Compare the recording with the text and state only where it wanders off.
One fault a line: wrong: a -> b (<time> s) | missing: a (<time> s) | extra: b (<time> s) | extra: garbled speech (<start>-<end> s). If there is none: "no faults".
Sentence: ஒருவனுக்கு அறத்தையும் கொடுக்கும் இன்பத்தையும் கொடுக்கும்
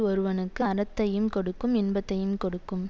no faults